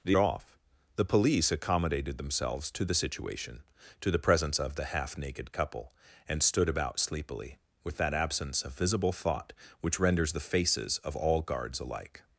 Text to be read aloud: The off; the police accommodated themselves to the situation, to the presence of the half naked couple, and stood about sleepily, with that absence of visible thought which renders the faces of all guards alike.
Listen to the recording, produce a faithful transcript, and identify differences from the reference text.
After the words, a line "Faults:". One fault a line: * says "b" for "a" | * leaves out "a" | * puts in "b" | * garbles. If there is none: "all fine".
The off; the police accommodated themselves to the situation, to the presence of the half naked couple, and stood about sleepily, with that absence of visible thought which renders the faces of all guards alike.
Faults:
all fine